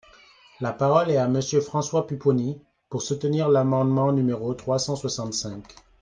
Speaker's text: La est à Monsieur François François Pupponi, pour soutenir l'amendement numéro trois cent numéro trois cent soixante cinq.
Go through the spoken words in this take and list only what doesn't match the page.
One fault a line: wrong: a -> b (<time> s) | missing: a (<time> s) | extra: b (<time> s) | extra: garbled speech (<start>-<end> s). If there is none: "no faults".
extra: parole (0.7 s)
missing: François (2.1 s)
missing: numéro trois cent (5.0 s)